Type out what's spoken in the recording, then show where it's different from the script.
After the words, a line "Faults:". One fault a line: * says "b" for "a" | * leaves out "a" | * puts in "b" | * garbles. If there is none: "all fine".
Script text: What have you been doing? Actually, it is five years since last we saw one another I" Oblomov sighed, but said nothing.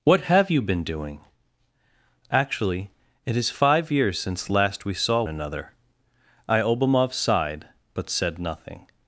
What have you been doing? Actually, it is five years since last we saw another I" Oblomov sighed, but said nothing.
Faults:
* leaves out "one"